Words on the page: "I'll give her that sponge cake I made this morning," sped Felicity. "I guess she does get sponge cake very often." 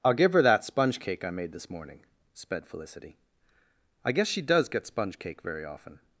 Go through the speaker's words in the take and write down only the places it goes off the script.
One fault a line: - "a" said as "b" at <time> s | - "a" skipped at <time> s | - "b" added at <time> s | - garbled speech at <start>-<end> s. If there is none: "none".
none